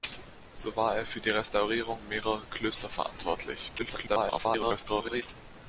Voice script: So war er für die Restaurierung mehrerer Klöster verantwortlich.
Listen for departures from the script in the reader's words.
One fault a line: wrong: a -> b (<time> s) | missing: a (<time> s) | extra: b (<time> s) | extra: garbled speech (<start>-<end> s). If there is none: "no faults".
extra: garbled speech (3.8-5.2 s)